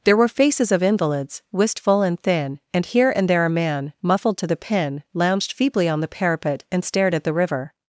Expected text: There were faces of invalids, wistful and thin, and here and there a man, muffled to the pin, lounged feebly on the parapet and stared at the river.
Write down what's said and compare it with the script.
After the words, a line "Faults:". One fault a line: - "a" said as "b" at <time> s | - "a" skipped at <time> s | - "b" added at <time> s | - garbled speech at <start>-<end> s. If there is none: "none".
There were faces of invalids, wistful and thin, and here and there a man, muffled to the pin, lounged feebly on the parapet and stared at the river.
Faults:
none